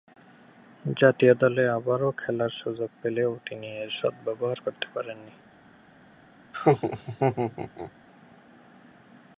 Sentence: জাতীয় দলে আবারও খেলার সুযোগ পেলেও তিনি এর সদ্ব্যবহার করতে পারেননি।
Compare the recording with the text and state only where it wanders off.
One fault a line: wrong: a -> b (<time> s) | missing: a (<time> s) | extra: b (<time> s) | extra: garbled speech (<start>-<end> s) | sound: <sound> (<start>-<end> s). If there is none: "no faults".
sound: laugh (6.5-7.9 s)